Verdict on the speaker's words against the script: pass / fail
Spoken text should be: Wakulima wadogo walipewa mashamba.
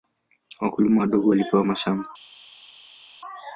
pass